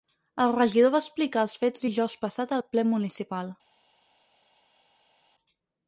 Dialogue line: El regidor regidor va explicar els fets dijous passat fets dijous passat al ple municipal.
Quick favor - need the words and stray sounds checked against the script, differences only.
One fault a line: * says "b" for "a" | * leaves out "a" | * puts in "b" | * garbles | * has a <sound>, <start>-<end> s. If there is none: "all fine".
* leaves out "regidor"
* leaves out "fets dijous passat"